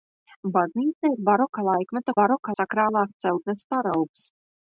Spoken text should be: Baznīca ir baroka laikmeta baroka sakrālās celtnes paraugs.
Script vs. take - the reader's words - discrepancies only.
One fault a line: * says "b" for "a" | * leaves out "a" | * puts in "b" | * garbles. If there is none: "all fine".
all fine